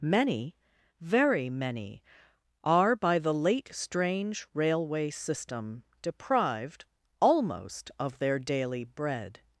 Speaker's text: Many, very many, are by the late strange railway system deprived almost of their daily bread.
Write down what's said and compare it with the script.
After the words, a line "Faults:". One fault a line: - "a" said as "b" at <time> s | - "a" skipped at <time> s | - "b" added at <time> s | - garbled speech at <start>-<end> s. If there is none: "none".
Many, very many, are by the late strange railway system deprived almost of their daily bread.
Faults:
none